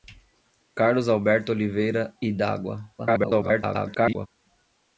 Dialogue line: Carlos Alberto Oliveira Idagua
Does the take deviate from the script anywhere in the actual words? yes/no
yes